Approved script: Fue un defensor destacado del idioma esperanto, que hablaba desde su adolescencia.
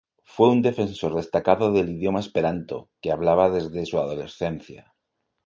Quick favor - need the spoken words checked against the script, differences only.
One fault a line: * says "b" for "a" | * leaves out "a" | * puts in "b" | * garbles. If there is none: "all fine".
all fine